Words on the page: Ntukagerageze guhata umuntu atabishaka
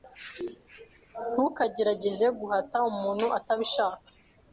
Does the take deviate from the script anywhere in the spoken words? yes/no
no